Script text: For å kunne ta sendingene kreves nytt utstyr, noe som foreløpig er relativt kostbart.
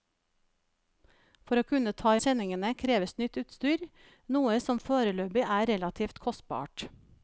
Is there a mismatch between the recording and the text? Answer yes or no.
no